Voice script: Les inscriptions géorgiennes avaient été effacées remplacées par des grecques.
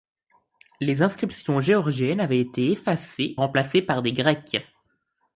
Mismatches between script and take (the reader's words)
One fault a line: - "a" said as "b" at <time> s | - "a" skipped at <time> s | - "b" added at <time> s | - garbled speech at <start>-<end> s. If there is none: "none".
none